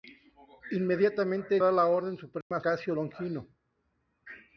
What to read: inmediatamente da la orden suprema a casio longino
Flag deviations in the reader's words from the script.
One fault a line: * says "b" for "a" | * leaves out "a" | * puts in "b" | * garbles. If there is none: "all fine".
all fine